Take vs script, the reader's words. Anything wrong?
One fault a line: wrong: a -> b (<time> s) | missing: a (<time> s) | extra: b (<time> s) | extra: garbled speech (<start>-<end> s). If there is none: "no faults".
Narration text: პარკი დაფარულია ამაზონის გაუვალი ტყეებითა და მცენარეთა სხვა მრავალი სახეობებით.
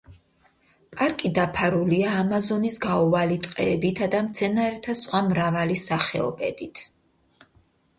no faults